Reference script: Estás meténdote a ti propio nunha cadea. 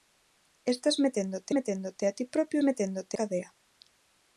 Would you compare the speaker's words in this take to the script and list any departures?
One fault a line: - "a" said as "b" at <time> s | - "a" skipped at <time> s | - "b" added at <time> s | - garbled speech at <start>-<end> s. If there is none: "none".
- "meténdote" added at 1.6 s
- "nunha" said as "meténdote" at 2.7 s